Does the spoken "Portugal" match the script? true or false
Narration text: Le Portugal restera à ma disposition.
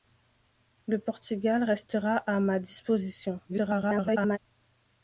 true